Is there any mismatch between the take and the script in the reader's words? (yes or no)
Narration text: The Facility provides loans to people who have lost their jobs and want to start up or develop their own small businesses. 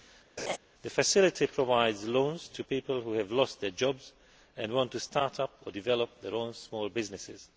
no